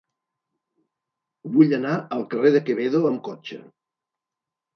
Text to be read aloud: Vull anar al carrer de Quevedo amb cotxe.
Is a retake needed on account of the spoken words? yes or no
no